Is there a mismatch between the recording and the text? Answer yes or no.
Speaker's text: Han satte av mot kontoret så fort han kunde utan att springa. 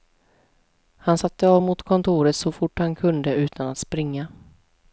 no